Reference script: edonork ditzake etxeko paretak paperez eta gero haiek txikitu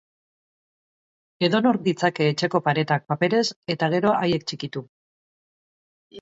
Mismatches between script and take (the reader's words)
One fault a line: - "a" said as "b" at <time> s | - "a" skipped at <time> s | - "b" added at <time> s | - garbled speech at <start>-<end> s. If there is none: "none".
none